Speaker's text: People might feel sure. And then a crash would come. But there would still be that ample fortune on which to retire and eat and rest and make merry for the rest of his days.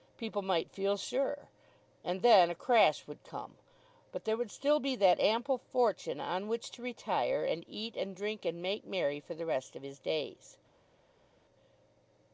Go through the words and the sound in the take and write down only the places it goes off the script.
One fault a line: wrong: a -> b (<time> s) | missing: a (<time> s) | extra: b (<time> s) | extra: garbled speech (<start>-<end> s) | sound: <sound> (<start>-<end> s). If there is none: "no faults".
wrong: rest -> drink (8.2 s)